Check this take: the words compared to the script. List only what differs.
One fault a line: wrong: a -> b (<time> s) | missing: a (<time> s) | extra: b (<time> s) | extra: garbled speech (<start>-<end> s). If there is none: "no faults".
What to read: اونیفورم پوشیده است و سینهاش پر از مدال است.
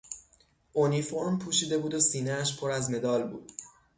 wrong: است -> بود (1.8 s)
wrong: است -> بود (3.3 s)